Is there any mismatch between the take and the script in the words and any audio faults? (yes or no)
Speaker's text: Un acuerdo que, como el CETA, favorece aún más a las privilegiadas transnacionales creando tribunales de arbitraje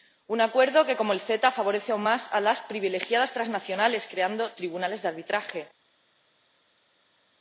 no